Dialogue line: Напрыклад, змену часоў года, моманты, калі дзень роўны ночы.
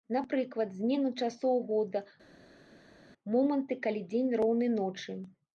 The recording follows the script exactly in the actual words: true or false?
true